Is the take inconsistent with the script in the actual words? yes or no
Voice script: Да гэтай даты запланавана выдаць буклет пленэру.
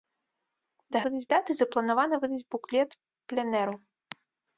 yes